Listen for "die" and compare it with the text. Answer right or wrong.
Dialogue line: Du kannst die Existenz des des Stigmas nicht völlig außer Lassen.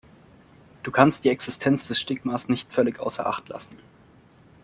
right